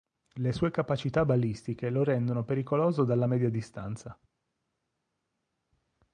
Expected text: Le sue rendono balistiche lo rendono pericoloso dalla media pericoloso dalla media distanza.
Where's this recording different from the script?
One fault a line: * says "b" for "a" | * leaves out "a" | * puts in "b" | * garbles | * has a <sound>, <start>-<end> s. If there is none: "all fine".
* says "capacità" for "rendono"
* leaves out "pericoloso dalla media"